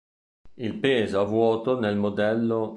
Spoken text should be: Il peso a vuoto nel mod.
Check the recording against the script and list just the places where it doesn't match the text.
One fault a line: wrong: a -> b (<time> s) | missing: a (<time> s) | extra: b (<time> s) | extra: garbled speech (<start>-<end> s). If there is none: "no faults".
no faults